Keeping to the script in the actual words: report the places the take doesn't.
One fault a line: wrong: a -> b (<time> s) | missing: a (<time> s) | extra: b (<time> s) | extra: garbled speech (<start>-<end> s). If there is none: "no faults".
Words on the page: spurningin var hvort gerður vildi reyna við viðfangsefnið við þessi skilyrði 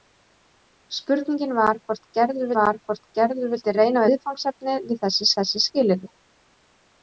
extra: var hvort gerður (2.6 s)
missing: við (4.1 s)
extra: þessi (5.4 s)